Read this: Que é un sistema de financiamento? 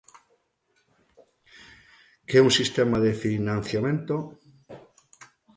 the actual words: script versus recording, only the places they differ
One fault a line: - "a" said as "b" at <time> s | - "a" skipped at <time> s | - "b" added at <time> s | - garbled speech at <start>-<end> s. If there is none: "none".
none